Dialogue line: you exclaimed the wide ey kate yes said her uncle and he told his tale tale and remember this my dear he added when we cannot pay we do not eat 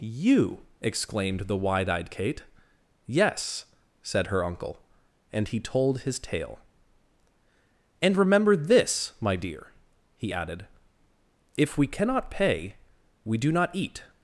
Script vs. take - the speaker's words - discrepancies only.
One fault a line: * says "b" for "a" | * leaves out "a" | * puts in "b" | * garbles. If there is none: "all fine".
* says "eyed" for "ey"
* leaves out "tale"
* says "if" for "when"